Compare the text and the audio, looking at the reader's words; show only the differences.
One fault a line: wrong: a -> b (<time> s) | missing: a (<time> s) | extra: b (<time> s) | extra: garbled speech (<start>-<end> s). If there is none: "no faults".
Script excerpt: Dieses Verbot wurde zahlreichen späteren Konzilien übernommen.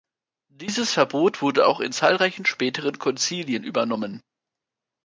extra: auch in (1.7 s)